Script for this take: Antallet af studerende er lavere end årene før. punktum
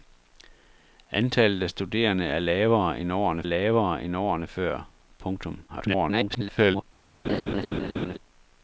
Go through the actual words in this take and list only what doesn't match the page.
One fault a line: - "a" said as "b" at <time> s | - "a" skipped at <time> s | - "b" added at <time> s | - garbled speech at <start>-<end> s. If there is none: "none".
- "lavere end årene" added at 3.4 s
- garbled speech at 5.7-6.8 s